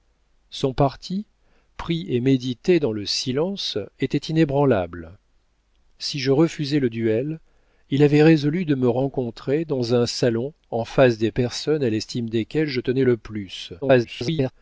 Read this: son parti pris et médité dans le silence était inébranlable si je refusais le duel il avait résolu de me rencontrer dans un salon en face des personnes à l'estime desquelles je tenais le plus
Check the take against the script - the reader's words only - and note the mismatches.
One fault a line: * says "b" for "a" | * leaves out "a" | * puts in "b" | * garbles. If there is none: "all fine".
* garbles